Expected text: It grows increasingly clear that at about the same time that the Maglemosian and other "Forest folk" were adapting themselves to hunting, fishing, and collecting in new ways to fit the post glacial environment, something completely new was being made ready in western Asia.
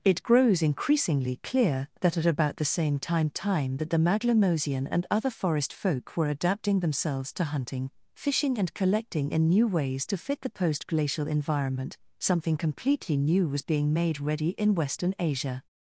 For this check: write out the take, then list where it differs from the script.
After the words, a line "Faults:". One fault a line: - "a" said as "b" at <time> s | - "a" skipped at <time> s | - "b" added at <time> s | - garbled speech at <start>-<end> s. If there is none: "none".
It grows increasingly clear that at about the same time time that the Maglemosian and other "Forest folk" were adapting themselves to hunting, fishing, and collecting in new ways to fit the post glacial environment, something completely new was being made ready in western Asia.
Faults:
- "time" added at 3.3 s